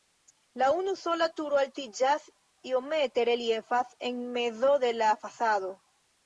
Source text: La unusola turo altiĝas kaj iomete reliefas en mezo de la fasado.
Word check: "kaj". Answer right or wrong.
wrong